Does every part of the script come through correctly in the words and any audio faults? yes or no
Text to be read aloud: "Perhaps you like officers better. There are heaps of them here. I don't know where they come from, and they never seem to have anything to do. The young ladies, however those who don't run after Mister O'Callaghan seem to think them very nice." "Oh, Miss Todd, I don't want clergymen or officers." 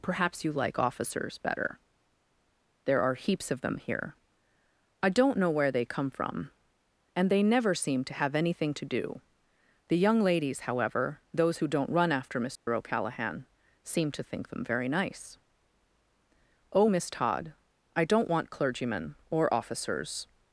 no